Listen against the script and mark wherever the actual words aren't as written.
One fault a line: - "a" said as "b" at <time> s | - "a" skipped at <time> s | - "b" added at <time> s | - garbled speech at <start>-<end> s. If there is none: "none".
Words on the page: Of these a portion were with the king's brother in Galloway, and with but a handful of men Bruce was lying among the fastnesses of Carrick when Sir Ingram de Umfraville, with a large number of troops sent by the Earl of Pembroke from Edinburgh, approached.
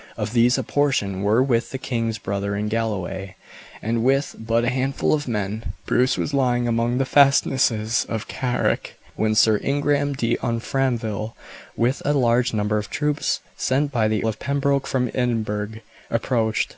- "Earl" skipped at 14.2 s